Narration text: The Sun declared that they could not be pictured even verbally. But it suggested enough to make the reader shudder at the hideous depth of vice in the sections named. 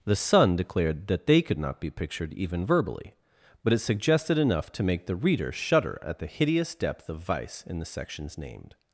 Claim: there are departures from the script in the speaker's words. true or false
false